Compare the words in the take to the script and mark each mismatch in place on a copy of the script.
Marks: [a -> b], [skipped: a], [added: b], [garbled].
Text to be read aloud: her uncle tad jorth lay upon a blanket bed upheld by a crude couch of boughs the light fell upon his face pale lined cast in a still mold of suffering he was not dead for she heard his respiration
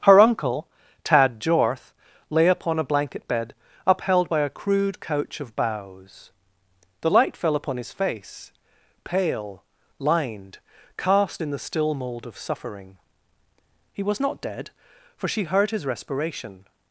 her uncle tad jorth lay upon a blanket bed upheld by a crude couch of boughs the light fell upon his face pale lined cast in [a -> the] still mold of suffering he was not dead for she heard his respiration